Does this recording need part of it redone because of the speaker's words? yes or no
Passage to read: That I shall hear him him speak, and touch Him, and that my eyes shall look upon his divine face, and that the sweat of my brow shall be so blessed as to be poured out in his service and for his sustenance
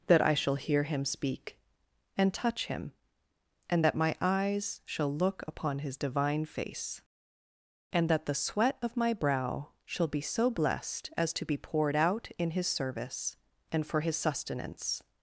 yes